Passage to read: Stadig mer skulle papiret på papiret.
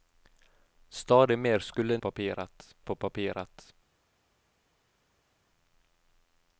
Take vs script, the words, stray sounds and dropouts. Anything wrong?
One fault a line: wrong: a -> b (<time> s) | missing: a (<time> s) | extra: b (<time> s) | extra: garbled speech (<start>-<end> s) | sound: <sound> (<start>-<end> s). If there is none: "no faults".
no faults